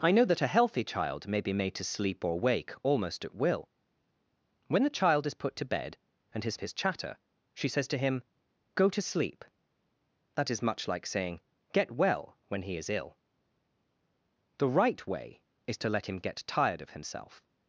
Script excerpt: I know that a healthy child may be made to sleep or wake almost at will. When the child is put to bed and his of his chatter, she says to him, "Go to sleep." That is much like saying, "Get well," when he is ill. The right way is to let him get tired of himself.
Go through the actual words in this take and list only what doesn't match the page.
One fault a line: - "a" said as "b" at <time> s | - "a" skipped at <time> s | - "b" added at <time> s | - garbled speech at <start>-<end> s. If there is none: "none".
none